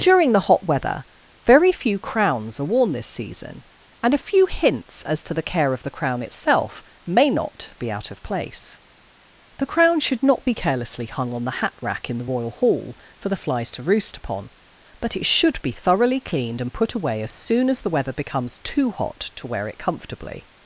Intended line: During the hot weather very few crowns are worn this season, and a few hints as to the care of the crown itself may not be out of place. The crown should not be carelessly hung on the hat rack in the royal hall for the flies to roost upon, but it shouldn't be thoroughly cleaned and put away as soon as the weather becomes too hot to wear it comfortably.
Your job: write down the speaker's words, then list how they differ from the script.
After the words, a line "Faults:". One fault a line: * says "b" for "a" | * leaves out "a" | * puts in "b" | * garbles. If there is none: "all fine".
During the hot weather very few crowns are worn this season, and a few hints as to the care of the crown itself may not be out of place. The crown should not be carelessly hung on the hat rack in the royal hall for the flies to roost upon, but it should be thoroughly cleaned and put away as soon as the weather becomes too hot to wear it comfortably.
Faults:
* says "should" for "shouldn't"